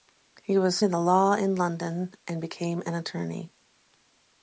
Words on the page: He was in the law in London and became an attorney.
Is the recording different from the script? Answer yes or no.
no